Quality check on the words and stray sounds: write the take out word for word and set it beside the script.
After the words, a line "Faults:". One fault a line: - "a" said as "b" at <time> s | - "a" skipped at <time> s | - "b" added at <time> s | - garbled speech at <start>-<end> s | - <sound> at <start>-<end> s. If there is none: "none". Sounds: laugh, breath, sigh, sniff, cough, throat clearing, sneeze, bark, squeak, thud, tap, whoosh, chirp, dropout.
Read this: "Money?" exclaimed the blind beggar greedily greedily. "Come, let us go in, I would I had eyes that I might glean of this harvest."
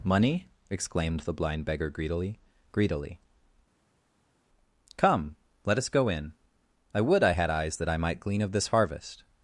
"Money?" exclaimed the blind beggar greedily greedily. "Come, let us go in, I would I had eyes that I might glean of this harvest."
Faults:
none